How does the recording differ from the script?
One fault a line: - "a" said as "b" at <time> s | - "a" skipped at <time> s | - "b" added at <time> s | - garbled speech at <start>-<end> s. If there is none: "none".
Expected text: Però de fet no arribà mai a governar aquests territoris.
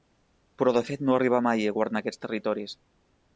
none